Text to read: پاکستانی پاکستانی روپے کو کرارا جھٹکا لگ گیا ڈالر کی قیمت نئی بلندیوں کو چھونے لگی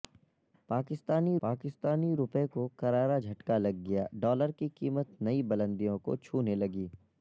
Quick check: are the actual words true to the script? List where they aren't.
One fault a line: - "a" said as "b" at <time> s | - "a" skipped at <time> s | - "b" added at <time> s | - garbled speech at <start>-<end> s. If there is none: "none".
none